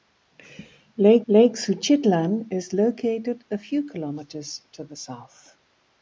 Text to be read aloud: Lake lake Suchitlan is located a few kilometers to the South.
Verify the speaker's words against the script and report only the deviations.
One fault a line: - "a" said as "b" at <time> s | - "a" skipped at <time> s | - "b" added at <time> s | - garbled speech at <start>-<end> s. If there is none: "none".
none